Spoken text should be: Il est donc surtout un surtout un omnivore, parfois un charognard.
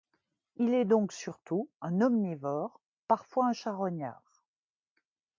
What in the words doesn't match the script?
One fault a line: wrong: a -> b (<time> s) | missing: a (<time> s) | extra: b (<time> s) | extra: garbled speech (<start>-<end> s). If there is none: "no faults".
missing: surtout un (2.0 s)